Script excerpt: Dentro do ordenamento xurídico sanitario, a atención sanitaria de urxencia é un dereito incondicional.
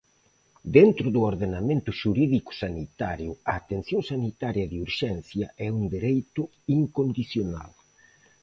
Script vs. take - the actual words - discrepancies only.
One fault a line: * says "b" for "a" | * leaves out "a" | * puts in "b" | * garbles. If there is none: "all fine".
all fine